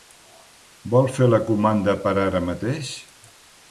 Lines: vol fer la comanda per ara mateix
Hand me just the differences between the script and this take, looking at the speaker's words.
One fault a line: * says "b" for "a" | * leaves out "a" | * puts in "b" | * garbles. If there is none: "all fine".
all fine